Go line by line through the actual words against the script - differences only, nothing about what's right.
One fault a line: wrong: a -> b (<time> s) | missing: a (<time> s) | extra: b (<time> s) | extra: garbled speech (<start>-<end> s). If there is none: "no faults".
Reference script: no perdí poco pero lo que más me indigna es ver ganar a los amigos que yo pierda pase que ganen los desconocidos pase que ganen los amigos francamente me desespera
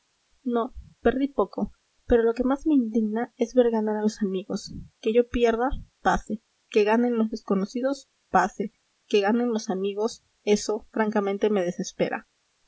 extra: eso (10.5 s)